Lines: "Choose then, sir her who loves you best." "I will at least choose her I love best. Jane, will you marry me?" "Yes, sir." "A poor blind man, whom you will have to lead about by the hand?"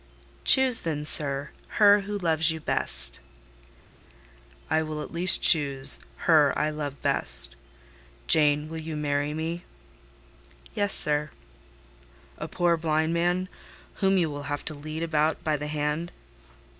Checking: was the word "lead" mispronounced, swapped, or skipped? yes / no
no